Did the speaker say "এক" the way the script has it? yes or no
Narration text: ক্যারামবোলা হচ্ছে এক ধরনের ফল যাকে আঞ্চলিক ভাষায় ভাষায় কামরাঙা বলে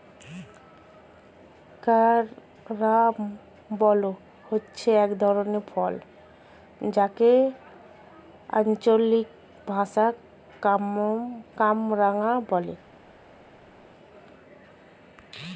yes